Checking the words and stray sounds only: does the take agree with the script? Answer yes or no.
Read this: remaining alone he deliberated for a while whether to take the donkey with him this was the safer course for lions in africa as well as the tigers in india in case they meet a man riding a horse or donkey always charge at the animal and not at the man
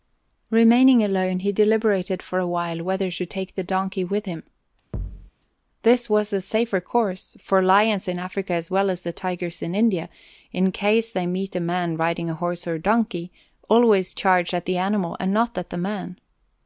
no